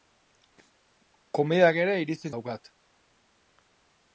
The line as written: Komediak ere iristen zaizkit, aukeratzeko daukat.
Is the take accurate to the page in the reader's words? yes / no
no